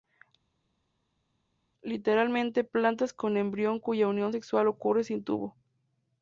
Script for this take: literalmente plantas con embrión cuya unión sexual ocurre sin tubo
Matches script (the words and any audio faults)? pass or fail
pass